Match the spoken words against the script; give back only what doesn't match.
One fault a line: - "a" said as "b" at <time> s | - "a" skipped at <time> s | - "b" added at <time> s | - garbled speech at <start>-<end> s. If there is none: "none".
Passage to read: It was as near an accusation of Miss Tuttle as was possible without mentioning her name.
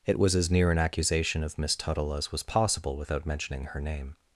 none